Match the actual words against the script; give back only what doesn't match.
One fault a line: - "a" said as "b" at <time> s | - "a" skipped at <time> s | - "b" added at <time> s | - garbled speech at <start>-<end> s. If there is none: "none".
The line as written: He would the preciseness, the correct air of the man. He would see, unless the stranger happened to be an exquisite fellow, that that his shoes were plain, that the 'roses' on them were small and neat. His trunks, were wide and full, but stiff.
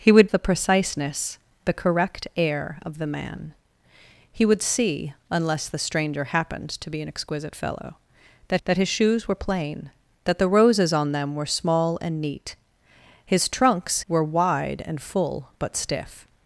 none